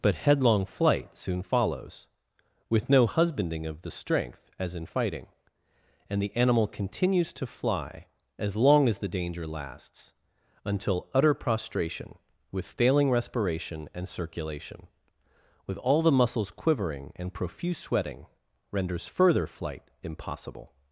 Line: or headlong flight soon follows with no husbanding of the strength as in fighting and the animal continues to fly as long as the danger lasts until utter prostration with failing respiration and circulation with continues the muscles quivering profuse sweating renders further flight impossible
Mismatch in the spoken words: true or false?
true